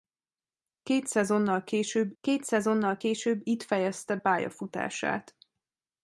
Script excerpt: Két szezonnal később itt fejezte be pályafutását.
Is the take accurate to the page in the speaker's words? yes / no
no